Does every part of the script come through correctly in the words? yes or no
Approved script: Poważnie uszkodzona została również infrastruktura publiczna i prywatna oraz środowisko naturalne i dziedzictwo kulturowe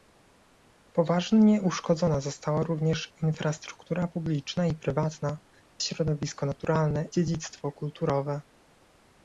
no